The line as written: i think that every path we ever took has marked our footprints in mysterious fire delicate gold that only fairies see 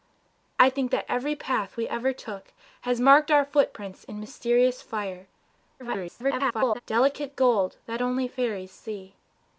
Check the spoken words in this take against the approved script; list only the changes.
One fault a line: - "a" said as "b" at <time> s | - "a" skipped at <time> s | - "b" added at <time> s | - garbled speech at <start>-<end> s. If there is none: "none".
- garbled speech at 5.8-6.8 s